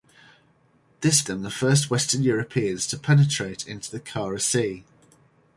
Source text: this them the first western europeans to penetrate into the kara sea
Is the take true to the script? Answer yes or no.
yes